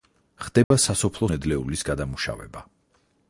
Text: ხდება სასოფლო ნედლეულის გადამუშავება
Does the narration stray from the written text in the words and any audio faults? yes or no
yes